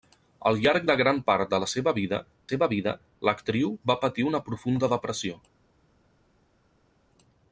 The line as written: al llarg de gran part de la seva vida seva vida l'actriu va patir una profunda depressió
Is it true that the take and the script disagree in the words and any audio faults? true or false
false